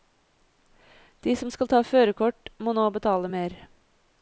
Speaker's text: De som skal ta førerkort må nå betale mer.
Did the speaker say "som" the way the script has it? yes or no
yes